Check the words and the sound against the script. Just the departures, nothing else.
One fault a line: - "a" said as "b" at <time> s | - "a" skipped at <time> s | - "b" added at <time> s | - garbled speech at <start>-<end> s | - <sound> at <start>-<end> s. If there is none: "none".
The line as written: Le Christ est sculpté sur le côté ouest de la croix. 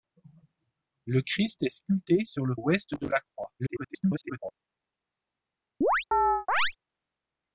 - "côté" skipped at 2.5 s
- garbled speech at 3.6-4.5 s
- chirp at 5.8-6.8 s